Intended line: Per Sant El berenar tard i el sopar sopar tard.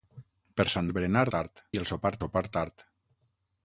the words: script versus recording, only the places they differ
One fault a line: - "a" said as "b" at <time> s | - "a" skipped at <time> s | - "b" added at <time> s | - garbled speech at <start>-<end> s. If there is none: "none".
none